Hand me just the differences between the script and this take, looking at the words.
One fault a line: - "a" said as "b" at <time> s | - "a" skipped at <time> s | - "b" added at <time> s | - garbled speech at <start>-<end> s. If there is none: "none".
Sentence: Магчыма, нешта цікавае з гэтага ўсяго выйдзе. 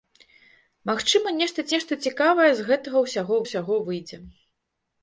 - "нешта" added at 1.7 s
- "ўсяго" added at 3.4 s